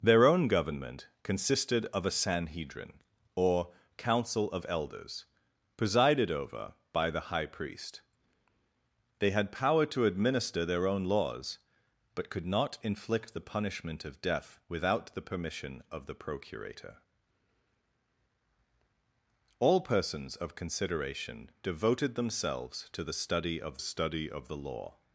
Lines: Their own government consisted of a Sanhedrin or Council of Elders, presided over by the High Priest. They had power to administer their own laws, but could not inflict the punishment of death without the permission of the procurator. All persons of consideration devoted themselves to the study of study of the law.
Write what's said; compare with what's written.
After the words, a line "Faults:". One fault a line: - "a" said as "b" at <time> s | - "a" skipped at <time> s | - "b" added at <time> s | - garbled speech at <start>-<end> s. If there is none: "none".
Their own government consisted of a Sanhedrin or Council of Elders, presided over by the High Priest. They had power to administer their own laws, but could not inflict the punishment of death without the permission of the procurator. All persons of consideration devoted themselves to the study of study of the law.
Faults:
none